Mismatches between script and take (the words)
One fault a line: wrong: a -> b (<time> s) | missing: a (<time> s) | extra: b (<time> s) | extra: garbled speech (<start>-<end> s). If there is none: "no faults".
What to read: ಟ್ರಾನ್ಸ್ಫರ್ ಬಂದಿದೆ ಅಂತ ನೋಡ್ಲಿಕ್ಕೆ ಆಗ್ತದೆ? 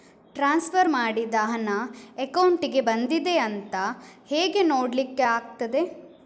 extra: ಮಾಡಿದ ಹಣ ಅಕೌಂಟಿಗೆ (0.9 s)
extra: ಹೇಗೆ (4.3 s)